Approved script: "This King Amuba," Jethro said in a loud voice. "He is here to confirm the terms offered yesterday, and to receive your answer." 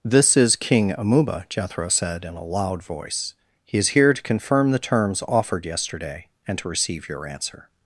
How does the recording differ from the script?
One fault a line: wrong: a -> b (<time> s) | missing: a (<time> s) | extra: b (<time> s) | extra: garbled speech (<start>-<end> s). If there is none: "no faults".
extra: is (0.3 s)